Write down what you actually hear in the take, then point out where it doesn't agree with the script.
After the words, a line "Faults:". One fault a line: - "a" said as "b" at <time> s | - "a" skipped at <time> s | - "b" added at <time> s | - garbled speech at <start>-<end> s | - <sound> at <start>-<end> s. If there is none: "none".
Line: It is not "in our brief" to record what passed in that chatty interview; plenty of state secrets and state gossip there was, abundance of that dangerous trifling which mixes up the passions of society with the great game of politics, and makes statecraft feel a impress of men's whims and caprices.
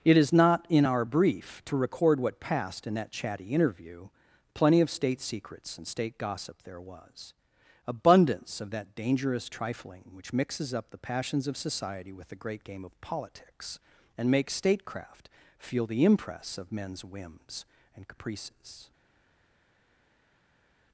It is not "in our brief" to record what passed in that chatty interview; plenty of state secrets and state gossip there was, abundance of that dangerous trifling which mixes up the passions of society with the great game of politics, and makes statecraft feel the impress of men's whims and caprices.
Faults:
- "a" said as "the" at 15.9 s